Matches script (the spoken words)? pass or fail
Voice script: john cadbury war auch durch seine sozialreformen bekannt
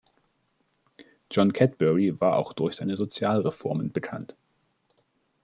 pass